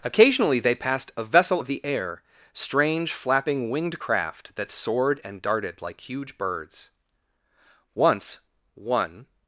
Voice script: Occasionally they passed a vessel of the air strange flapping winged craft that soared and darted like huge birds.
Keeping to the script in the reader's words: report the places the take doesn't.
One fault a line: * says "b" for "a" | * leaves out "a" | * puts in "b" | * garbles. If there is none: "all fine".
* puts in "Once one"